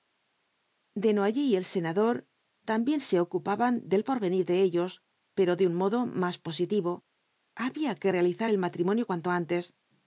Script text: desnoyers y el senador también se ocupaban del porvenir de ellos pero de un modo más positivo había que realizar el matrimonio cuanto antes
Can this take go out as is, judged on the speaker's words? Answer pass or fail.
pass